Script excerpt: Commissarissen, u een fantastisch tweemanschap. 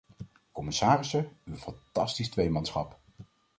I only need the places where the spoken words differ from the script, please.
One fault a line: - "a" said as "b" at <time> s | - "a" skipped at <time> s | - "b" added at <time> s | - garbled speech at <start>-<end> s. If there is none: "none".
none